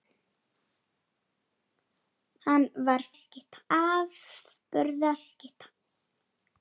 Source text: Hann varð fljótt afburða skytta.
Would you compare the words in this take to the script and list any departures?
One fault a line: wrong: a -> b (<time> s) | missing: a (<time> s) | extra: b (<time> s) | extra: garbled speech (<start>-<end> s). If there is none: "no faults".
wrong: fljótt -> skytta (3.1 s)